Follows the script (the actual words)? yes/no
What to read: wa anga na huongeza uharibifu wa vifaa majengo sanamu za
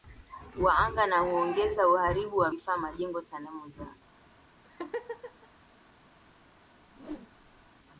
yes